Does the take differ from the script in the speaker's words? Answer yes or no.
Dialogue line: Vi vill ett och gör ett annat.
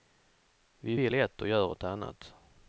no